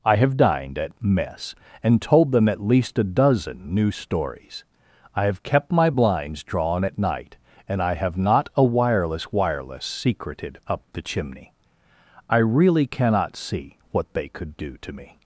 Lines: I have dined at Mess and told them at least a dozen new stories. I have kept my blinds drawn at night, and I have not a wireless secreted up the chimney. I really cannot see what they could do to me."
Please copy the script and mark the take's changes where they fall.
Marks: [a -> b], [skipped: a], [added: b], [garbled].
I have dined at Mess and told them at least a dozen new stories. I have kept my blinds drawn at night, and I have not a wireless [added: wireless] secreted up the chimney. I really cannot see what they could do to me."